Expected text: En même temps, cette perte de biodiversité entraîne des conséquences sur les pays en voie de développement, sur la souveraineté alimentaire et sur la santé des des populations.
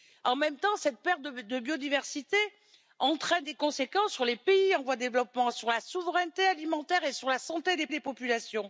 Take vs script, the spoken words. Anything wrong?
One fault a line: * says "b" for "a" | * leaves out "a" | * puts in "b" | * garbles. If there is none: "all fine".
all fine